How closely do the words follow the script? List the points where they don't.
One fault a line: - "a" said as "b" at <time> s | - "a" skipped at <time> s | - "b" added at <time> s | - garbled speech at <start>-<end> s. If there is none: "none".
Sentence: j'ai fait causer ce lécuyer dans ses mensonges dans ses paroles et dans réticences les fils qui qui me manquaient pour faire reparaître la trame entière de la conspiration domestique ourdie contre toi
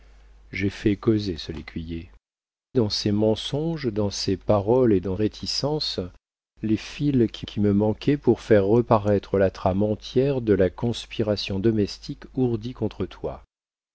none